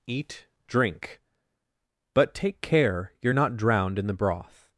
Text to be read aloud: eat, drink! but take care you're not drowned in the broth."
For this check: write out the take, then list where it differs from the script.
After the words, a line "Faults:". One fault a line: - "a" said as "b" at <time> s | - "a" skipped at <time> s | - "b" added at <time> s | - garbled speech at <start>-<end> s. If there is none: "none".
eat, drink! but take care you're not drowned in the broth."
Faults:
none